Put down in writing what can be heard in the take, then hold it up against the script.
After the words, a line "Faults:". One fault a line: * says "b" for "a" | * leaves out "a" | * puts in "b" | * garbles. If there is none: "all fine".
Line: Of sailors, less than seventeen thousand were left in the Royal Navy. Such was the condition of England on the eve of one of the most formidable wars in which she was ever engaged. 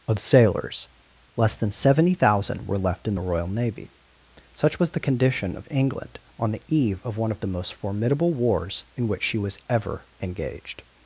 Of sailors, less than seventy thousand were left in the Royal Navy. Such was the condition of England on the eve of one of the most formidable wars in which she was ever engaged.
Faults:
* says "seventy" for "seventeen"